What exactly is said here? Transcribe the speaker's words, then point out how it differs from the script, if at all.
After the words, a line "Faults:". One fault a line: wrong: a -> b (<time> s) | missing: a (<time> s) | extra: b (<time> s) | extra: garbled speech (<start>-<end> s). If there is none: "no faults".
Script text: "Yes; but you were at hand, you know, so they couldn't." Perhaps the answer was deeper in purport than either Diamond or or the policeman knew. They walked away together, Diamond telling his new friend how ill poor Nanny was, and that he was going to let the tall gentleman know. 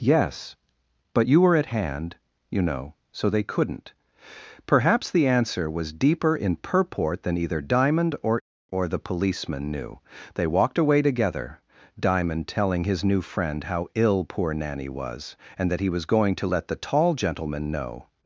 "Yes; but you were at hand, you know, so they couldn't." Perhaps the answer was deeper in purport than either Diamond or or the policeman knew. They walked away together, Diamond telling his new friend how ill poor Nanny was, and that he was going to let the tall gentleman know.
Faults:
no faults